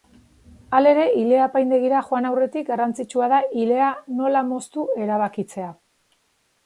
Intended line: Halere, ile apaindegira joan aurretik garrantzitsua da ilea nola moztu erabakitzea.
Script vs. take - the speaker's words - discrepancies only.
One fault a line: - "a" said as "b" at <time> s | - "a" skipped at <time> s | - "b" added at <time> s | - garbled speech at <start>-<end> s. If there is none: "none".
none